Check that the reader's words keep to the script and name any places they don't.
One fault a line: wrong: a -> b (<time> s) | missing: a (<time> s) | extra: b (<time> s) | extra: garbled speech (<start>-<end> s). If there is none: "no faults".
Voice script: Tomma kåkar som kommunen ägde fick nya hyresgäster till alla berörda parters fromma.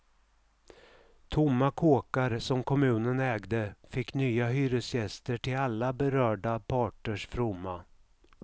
no faults